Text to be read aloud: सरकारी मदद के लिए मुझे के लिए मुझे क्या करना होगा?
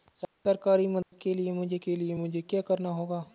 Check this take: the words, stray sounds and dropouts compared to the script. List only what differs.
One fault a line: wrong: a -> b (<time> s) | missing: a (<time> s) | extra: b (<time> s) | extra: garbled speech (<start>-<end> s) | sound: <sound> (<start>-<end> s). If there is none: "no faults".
sound: dropout (1.0-1.1 s)